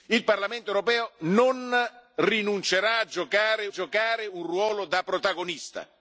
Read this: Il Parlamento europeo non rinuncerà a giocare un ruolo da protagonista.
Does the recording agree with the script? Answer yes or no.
no